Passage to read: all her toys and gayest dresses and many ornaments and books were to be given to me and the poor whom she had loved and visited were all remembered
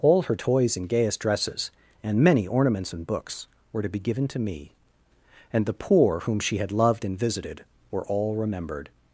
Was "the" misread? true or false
false